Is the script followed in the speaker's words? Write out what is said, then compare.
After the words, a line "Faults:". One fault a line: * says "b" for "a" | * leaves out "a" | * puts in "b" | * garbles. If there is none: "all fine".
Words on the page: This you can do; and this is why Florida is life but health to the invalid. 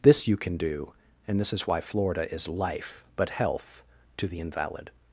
This you can do; and this is why Florida is life but health to the invalid.
Faults:
all fine